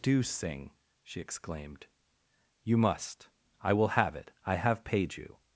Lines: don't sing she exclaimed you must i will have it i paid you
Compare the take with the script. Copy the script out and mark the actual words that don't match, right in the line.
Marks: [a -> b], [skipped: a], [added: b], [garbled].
[don't -> do] sing she exclaimed you must i will have it i [added: have] paid you